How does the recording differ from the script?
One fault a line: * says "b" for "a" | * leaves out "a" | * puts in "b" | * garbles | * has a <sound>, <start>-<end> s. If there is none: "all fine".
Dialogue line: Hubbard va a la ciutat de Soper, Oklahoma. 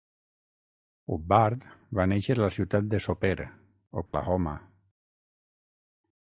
* puts in "néixer"
* has a dropout, 4.1-4.1 s